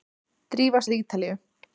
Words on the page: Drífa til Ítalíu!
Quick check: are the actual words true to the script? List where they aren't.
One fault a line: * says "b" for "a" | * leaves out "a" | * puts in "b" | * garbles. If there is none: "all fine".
all fine